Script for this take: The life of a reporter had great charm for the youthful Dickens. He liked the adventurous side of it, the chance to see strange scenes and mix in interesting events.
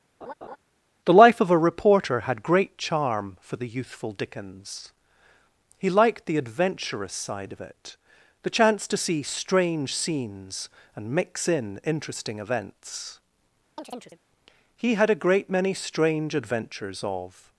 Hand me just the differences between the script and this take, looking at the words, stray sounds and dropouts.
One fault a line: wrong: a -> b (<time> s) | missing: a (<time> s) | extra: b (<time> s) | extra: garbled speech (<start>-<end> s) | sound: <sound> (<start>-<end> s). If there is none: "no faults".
sound: laugh (0.2-0.6 s)
sound: chirp (13.8-14.2 s)
extra: He had a great many strange adventures of (14.8 s)